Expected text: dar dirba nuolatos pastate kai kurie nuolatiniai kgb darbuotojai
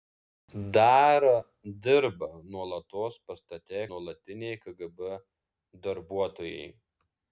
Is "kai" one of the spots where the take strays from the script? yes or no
yes